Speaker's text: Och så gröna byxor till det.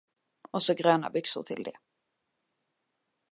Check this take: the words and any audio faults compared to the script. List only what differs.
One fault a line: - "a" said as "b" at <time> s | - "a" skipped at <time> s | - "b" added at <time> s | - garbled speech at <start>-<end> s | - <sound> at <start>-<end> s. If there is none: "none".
none